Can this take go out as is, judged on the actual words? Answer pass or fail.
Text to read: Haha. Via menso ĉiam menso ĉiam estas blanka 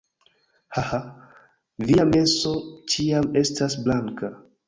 fail